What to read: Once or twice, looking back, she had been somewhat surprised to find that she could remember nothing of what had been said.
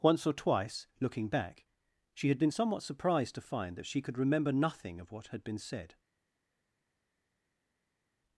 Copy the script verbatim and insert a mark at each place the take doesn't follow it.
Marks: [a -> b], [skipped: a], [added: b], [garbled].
Once or twice, looking back, she had been somewhat surprised to find that she could remember nothing of what had been said.